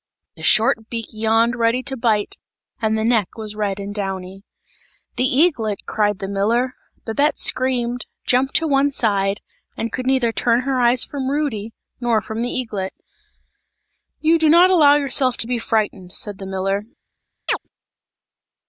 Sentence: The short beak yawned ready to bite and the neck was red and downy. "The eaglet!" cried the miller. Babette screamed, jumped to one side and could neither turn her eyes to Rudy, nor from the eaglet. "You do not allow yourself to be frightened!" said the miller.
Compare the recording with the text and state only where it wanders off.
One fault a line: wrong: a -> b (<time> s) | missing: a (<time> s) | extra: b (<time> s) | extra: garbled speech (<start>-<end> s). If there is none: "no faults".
wrong: to -> from (11.0 s)